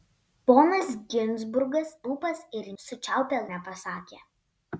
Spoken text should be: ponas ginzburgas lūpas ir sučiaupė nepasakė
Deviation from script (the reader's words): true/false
false